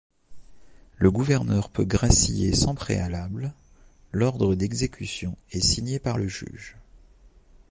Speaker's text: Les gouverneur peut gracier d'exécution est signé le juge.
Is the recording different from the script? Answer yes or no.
yes